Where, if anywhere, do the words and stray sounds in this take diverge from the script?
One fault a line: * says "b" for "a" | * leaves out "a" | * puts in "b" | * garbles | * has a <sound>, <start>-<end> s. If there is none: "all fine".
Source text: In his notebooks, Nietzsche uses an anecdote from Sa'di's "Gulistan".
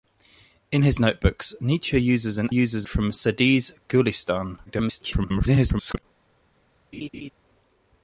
* says "uses" for "anecdote"
* garbles
* has a laugh, 6.9-7.3 s